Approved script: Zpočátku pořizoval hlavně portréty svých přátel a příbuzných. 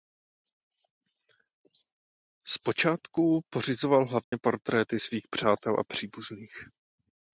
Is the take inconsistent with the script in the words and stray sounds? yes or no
yes